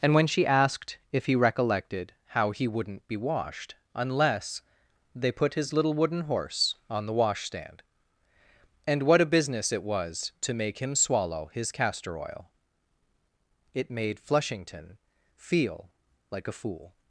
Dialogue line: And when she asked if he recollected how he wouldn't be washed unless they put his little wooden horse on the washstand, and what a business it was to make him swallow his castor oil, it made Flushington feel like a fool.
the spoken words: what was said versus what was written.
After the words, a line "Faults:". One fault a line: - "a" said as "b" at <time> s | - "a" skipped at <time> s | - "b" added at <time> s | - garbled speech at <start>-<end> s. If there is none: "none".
And when she asked if he recollected how he wouldn't be washed unless they put his little wooden horse on the washstand, and what a business it was to make him swallow his castor oil, it made Flushington feel like a fool.
Faults:
none